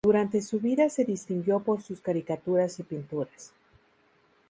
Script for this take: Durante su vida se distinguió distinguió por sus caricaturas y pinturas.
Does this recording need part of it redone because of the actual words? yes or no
yes